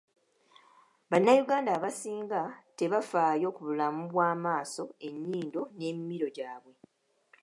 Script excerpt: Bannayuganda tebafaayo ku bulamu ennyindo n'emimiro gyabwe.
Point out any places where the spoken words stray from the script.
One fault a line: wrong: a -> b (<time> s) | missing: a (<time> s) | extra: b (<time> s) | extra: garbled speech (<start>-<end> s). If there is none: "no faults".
extra: abasinga (1.8 s)
extra: bw'amaaso (4.1 s)